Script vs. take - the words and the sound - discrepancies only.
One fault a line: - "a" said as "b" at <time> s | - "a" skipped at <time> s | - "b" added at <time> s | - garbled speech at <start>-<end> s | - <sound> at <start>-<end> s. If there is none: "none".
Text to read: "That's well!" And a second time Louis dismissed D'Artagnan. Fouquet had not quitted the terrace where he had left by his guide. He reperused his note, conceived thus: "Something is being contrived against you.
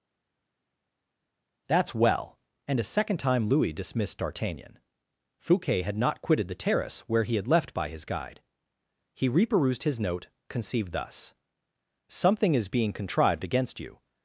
none